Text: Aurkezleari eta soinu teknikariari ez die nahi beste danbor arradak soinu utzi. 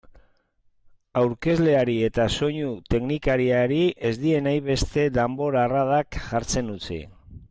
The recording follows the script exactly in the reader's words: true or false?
false